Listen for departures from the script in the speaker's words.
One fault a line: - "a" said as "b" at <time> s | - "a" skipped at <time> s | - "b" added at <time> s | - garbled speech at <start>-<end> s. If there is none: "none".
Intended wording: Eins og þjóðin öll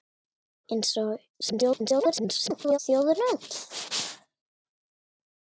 - garbled speech at 1.4-2.8 s